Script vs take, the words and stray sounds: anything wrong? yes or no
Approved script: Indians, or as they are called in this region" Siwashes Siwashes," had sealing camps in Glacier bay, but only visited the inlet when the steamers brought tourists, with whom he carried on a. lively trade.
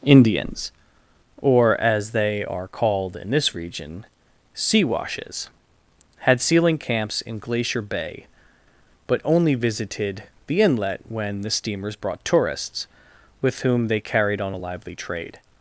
yes